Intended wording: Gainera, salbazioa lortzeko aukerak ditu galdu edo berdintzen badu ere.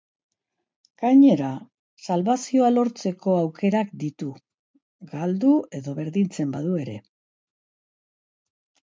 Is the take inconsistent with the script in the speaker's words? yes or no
no